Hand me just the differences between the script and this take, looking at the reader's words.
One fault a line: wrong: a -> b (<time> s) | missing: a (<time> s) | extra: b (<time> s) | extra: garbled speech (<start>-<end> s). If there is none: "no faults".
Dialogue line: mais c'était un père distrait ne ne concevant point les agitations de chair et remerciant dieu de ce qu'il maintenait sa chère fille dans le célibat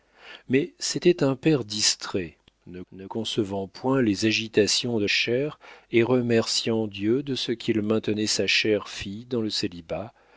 no faults